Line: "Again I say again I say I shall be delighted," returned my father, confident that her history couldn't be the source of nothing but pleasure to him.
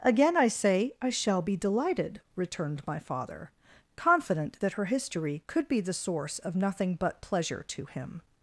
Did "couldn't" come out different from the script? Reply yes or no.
yes